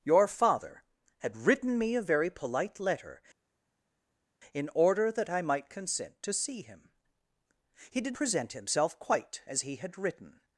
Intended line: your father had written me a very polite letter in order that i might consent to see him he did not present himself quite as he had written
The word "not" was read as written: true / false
false